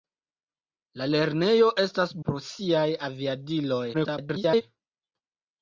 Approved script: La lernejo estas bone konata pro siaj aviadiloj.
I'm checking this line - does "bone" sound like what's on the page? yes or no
no